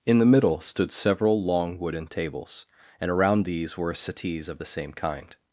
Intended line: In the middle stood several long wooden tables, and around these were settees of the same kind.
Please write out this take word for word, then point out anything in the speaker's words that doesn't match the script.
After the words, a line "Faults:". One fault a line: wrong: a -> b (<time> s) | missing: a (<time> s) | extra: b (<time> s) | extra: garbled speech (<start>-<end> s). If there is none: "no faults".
In the middle stood several long wooden tables, and around these were settees of the same kind.
Faults:
no faults